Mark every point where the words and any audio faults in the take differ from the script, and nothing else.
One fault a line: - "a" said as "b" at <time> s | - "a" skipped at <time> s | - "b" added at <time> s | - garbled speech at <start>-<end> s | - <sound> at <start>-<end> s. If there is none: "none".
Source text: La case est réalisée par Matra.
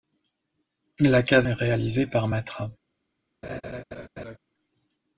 - laugh at 3.4-4.4 s